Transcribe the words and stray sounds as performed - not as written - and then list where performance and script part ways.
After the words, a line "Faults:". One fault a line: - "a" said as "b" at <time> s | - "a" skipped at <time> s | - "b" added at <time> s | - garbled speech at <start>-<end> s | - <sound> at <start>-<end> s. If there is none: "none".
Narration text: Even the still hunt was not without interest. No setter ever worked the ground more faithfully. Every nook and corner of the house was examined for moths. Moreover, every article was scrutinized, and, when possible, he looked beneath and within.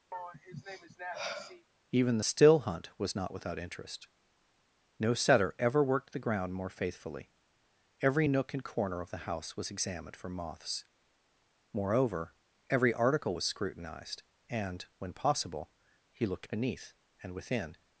Even the still hunt was not without interest. No setter ever worked the ground more faithfully. Every nook and corner of the house was examined for moths. Moreover, every article was scrutinized, and, when possible, he looked beneath and within.
Faults:
- sigh at 0.1-1.7 s